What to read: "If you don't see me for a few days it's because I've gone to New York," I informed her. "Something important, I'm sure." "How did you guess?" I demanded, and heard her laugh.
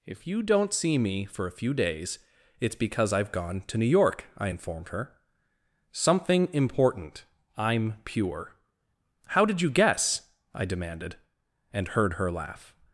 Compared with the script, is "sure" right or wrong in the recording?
wrong